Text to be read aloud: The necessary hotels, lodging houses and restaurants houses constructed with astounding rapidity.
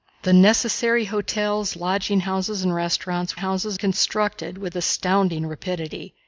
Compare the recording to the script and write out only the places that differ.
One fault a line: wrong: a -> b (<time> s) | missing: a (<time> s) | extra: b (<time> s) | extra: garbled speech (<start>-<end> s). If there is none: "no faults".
no faults